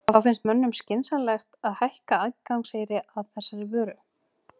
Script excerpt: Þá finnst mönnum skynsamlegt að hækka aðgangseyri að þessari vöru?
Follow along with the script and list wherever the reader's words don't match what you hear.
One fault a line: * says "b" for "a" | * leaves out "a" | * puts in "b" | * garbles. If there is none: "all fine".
all fine